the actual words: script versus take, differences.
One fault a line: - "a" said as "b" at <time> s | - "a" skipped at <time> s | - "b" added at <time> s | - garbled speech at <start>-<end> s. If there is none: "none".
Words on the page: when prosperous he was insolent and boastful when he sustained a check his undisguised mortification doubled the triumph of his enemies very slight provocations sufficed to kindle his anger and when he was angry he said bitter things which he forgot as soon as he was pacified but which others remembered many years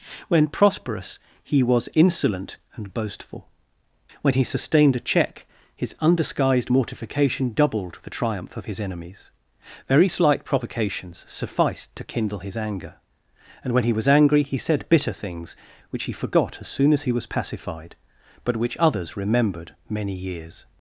none